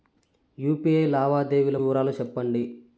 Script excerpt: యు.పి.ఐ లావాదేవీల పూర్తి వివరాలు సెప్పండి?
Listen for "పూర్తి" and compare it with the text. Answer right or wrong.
wrong